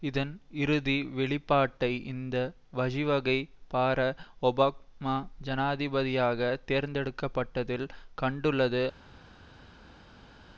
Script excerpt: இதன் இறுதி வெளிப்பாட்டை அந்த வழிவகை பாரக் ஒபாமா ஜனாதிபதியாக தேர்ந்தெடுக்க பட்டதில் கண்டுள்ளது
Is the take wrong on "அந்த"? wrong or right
wrong